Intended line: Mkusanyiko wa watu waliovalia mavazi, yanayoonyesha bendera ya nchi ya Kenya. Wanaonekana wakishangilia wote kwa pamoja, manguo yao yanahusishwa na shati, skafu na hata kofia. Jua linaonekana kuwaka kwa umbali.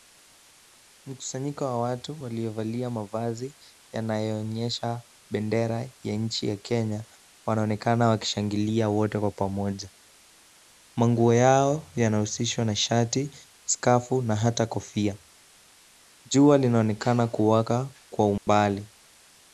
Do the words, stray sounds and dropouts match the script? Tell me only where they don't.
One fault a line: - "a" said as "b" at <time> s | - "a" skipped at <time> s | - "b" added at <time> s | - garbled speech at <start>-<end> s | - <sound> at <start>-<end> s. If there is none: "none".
- dropout at 18.4-18.5 s